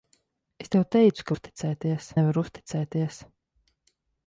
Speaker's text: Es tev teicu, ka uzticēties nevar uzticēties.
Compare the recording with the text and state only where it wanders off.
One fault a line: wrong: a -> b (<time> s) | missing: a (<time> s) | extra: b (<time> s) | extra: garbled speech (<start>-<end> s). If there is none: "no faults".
no faults